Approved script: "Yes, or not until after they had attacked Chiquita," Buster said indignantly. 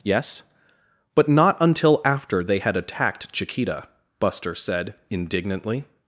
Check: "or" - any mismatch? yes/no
yes